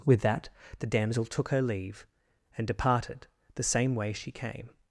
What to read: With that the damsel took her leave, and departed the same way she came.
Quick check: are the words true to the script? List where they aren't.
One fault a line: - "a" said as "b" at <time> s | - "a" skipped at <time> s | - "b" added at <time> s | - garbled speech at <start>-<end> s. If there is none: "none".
none